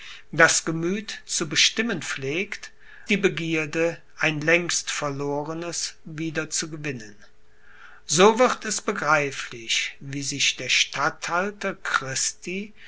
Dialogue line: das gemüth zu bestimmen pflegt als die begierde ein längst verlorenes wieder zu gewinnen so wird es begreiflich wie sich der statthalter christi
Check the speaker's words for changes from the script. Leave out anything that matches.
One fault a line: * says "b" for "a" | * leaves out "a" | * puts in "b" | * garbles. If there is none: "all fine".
* leaves out "als"